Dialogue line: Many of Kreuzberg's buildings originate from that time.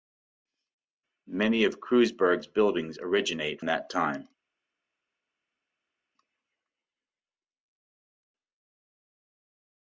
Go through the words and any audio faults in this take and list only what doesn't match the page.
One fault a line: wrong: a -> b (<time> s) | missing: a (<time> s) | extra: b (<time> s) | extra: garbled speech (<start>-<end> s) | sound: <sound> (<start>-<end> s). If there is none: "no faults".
missing: from (3.6 s)